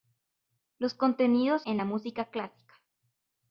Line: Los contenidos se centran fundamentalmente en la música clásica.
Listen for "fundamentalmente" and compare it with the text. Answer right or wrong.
wrong